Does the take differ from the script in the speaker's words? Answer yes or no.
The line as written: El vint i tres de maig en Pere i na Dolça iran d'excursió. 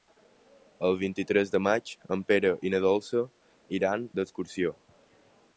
no